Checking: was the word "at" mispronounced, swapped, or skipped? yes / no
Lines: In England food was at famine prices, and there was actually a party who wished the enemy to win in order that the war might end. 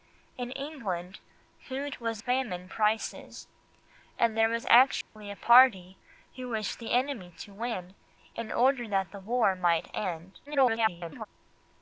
yes